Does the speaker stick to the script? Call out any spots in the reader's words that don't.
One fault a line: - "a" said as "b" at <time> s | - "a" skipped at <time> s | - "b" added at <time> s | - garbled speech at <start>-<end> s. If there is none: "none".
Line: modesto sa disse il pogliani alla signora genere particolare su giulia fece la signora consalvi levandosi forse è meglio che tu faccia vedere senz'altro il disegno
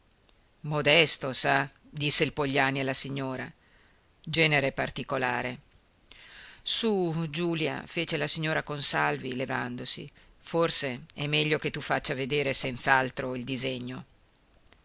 none